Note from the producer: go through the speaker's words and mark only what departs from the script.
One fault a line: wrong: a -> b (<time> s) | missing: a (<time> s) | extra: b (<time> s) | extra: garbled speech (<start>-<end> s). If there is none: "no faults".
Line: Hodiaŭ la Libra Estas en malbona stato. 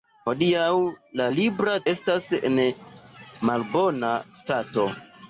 no faults